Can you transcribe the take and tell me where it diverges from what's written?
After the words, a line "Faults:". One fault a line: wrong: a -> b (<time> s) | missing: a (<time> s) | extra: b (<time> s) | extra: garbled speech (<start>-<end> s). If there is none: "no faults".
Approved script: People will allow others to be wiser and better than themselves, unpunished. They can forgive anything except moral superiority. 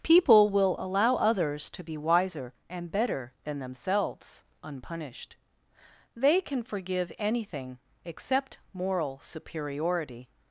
People will allow others to be wiser and better than themselves, unpunished. They can forgive anything except moral superiority.
Faults:
no faults